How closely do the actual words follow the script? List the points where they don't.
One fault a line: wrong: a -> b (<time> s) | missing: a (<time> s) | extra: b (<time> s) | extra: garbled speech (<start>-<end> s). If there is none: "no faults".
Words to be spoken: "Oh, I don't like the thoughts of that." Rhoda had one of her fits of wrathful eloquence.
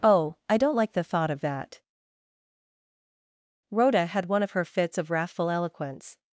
wrong: thoughts -> thought (1.0 s)